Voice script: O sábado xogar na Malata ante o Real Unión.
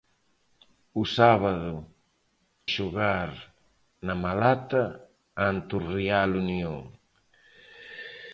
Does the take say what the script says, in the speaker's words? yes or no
yes